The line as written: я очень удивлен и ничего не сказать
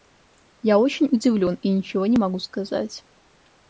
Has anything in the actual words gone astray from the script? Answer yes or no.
yes